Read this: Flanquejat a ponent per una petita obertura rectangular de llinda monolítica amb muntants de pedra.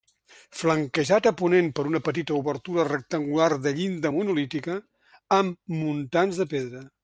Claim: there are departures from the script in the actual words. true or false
false